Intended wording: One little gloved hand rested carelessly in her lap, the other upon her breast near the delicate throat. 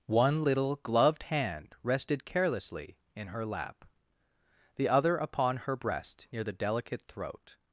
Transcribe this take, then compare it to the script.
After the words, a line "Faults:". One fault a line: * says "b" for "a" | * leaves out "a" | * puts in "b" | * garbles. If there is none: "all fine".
One little gloved hand rested carelessly in her lap, the other upon her breast near the delicate throat.
Faults:
all fine